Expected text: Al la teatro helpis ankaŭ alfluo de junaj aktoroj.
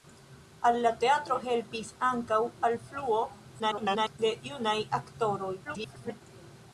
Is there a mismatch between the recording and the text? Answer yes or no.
yes